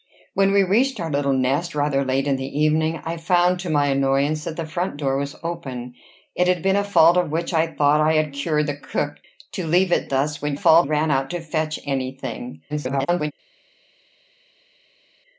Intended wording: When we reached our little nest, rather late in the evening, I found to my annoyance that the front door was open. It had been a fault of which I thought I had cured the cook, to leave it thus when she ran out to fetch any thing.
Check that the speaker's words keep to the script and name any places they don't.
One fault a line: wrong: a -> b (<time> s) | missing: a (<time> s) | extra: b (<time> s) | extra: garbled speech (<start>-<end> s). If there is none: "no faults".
wrong: she -> fault (10.5 s)
extra: garbled speech (12.7-13.3 s)